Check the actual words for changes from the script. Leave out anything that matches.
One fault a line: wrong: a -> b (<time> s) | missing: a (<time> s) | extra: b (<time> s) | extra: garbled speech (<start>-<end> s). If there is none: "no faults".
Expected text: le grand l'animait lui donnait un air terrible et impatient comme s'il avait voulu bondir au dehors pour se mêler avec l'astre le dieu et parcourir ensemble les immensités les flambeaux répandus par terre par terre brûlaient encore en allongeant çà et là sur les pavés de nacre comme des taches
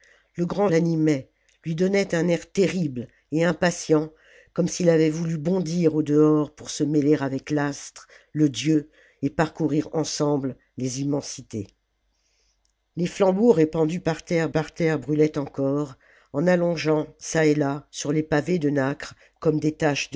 no faults